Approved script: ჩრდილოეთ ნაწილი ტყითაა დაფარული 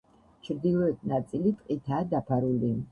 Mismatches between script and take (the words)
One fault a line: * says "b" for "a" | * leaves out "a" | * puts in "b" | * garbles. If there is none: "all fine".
all fine